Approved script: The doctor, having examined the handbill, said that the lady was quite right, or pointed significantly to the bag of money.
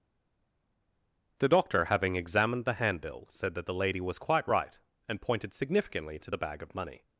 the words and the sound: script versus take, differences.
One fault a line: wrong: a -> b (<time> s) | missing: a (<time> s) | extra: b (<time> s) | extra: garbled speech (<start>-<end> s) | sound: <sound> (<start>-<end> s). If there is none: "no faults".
wrong: or -> and (5.1 s)